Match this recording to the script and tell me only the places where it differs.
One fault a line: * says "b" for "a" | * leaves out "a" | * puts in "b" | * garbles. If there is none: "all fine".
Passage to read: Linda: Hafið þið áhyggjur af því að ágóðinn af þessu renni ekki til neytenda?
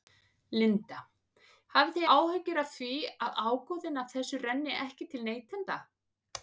all fine